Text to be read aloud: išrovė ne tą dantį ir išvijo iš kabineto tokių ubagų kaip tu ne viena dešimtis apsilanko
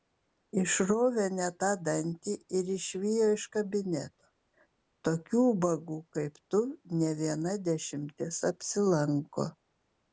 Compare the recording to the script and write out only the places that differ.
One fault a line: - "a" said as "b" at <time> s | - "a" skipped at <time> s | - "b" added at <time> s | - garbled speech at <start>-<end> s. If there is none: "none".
none